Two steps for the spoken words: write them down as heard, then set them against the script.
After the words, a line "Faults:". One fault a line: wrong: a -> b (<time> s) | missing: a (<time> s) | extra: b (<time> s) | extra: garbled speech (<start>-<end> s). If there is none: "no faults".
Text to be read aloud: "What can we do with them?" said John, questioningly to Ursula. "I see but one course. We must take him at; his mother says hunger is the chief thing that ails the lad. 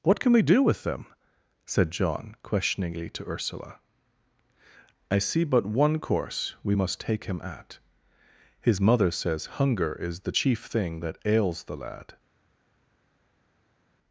"What can we do with them?" said John, questioningly to Ursula. "I see but one course. We must take him at; his mother says hunger is the chief thing that ails the lad.
Faults:
no faults